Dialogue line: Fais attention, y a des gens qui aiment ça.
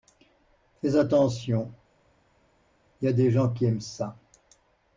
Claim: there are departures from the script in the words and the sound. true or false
false